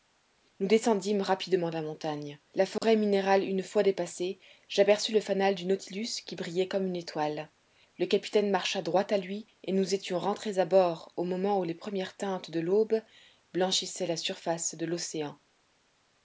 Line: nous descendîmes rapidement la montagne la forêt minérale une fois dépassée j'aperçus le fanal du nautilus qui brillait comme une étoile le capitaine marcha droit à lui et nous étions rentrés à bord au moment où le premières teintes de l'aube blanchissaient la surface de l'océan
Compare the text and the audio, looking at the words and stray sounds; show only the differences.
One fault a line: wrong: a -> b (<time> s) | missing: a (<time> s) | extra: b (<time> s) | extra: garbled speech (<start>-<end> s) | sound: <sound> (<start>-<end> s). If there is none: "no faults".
sound: dropout (2.8-2.8 s)
wrong: le -> les (11.6 s)